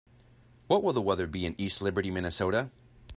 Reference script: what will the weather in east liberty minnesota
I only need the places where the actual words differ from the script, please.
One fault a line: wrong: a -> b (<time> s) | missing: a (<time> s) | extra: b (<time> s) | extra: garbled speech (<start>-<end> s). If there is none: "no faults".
extra: be (1.3 s)